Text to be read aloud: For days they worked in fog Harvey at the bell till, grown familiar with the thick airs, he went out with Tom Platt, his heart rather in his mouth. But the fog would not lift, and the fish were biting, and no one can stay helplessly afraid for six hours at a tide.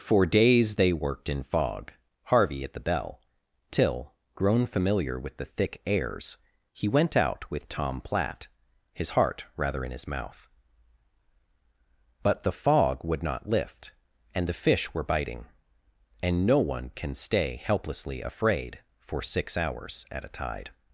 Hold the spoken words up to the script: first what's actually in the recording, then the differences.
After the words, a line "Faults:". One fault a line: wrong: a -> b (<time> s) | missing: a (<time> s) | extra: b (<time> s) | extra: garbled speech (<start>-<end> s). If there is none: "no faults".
For days they worked in fog Harvey at the bell till, grown familiar with the thick airs, he went out with Tom Platt, his heart rather in his mouth. But the fog would not lift, and the fish were biting, and no one can stay helplessly afraid for six hours at a tide.
Faults:
no faults